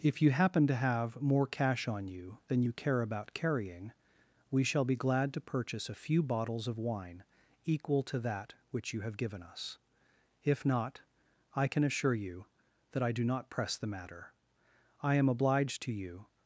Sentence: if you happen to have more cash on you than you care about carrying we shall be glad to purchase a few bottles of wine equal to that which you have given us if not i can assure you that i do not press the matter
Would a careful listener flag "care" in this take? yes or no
no